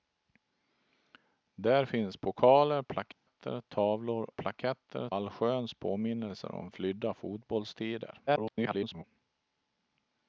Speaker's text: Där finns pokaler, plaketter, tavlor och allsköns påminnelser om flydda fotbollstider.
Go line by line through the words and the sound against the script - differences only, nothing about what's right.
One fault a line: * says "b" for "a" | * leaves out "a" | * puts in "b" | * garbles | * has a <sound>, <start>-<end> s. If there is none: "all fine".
* has a dropout, 3.1-3.3 s
* says "plaketter" for "och"
* garbles